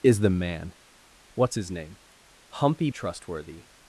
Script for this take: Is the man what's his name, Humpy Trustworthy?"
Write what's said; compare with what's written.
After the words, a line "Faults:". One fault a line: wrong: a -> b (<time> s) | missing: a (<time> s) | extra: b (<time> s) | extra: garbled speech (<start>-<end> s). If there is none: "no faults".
Is the man what's his name, Humpy Trustworthy?"
Faults:
no faults